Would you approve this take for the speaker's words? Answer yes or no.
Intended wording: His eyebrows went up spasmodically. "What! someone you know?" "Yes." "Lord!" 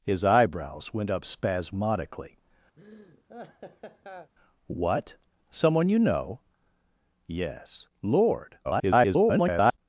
no